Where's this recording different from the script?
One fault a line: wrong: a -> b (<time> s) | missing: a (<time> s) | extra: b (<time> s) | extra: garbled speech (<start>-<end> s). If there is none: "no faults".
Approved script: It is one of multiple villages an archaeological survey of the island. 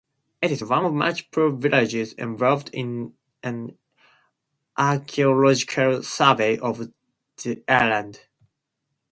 extra: involved in (2.1 s)